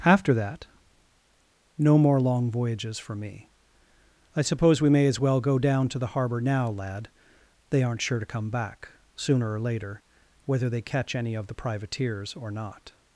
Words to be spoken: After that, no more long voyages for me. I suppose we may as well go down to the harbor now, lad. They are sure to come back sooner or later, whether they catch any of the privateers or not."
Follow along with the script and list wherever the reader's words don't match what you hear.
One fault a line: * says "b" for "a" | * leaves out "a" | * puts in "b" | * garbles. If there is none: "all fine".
* says "aren't" for "are"